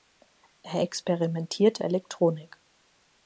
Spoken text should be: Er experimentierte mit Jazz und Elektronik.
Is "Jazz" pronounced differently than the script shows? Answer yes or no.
yes